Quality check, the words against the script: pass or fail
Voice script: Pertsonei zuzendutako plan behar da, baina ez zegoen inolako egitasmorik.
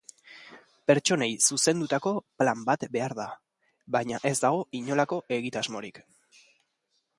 fail